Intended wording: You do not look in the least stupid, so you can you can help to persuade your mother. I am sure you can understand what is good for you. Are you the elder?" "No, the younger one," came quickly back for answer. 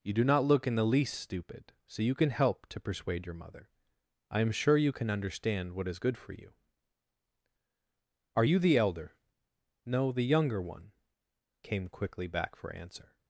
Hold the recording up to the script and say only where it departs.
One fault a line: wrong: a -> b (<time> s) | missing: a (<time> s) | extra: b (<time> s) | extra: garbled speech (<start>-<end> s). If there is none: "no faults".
missing: you can (2.3 s)